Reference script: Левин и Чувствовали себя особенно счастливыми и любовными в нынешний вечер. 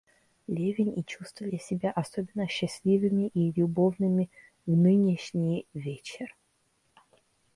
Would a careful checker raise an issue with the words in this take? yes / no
no